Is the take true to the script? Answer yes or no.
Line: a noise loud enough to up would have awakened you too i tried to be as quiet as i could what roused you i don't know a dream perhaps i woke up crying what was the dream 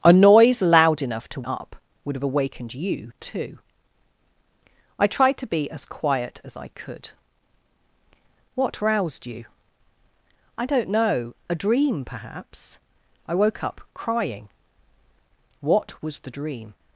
yes